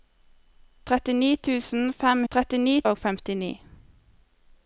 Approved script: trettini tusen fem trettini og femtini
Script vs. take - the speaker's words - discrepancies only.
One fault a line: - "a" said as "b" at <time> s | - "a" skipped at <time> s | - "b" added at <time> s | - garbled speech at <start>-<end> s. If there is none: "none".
none